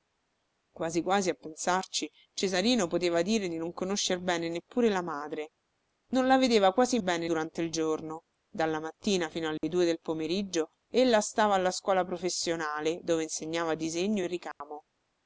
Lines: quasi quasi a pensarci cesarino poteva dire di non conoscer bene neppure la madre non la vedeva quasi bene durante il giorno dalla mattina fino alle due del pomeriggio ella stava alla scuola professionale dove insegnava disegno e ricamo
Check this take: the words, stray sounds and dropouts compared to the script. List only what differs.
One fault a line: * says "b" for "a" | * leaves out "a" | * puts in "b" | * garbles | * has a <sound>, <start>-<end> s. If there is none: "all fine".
* has a dropout, 9.6-9.6 s
* has a dropout, 14.5-14.6 s